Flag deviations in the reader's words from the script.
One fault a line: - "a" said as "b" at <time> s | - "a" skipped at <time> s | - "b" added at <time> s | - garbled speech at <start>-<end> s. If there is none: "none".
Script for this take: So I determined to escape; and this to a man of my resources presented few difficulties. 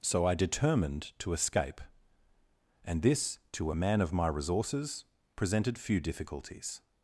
none